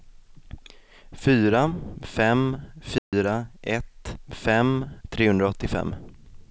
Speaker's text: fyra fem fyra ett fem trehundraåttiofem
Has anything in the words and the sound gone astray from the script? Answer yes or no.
yes